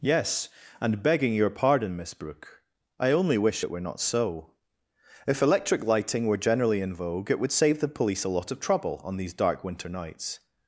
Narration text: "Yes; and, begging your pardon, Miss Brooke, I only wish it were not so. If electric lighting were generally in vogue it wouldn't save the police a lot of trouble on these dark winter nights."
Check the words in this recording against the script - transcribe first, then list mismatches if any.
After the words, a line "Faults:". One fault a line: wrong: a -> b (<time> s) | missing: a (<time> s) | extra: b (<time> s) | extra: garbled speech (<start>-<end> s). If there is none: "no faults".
"Yes; and, begging your pardon, Miss Brooke, I only wish it were not so. If electric lighting were generally in vogue it would save the police a lot of trouble on these dark winter nights."
Faults:
wrong: wouldn't -> would (7.4 s)